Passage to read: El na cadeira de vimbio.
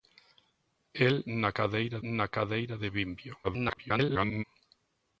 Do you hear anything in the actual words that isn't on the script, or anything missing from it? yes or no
yes